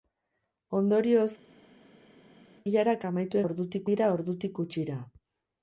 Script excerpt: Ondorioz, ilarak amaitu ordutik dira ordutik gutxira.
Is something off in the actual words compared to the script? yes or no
no